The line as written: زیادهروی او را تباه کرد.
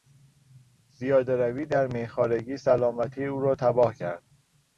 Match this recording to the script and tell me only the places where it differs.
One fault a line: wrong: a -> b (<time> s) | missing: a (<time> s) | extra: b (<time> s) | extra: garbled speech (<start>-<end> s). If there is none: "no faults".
extra: در میخوارگی سلامتی (1.6 s)